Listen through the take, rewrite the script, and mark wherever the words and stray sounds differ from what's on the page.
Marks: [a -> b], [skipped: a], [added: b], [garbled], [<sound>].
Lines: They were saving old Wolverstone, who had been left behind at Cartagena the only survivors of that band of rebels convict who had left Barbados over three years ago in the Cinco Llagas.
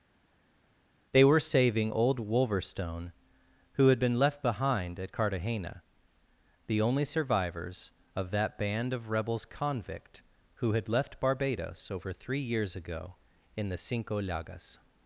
They were saving old Wolverstone, who had been left behind at Cartagena the only survivors of that band of rebels convict who had left Barbados over three years ago in the Cinco Llagas.